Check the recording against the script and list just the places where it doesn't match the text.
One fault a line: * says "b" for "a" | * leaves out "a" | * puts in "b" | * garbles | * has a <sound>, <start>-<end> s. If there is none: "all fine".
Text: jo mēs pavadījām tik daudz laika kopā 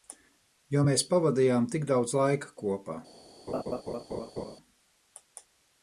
* has a laugh, 3.5-4.6 s